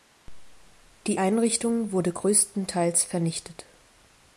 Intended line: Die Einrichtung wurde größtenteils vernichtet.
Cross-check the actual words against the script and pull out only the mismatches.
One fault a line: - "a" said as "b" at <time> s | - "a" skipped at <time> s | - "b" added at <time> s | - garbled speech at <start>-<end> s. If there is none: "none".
none